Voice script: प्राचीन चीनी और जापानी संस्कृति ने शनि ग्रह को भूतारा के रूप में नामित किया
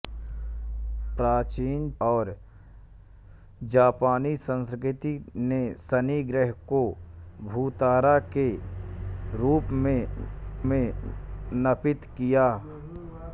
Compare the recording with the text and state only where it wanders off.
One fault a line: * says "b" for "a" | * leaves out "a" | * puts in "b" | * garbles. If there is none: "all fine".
* leaves out "चीनी"
* puts in "में"